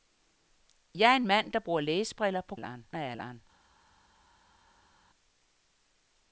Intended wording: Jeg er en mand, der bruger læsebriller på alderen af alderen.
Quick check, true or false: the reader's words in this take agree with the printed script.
true